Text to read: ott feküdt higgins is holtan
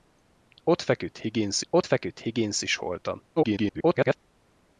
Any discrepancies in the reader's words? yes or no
yes